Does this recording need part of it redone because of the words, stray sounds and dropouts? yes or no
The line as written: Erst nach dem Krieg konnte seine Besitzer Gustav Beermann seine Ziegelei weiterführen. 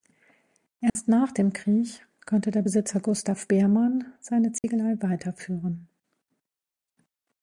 yes